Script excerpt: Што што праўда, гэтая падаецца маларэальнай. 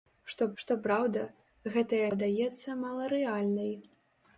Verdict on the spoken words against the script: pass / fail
pass